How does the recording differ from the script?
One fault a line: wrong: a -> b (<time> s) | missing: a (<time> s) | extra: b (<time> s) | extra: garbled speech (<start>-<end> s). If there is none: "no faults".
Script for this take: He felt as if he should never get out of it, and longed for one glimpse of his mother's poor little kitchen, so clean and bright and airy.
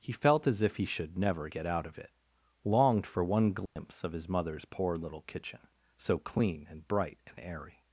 missing: and (2.1 s)